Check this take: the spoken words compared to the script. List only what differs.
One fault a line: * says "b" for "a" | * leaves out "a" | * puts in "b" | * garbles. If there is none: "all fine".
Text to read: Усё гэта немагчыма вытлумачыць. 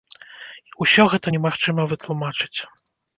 all fine